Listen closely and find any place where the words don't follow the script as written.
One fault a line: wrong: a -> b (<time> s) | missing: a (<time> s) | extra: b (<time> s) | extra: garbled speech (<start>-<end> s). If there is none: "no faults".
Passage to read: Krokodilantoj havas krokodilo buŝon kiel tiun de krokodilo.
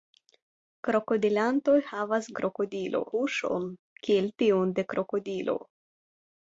no faults